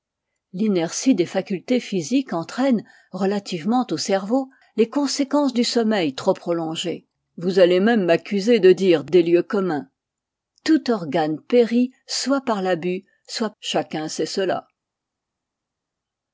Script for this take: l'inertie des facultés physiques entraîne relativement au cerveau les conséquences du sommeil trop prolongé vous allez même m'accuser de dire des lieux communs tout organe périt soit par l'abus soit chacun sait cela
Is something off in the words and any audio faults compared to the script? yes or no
no